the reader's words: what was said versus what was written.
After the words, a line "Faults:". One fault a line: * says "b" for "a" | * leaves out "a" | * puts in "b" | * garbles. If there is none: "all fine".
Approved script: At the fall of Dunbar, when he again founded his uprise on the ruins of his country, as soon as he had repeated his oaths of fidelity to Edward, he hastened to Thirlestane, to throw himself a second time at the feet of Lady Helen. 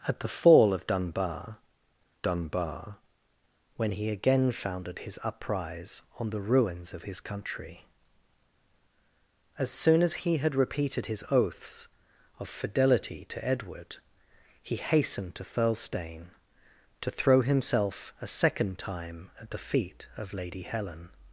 At the fall of Dunbar Dunbar, when he again founded his uprise on the ruins of his country, as soon as he had repeated his oaths of fidelity to Edward, he hastened to Thirlestane, to throw himself a second time at the feet of Lady Helen.
Faults:
* puts in "Dunbar"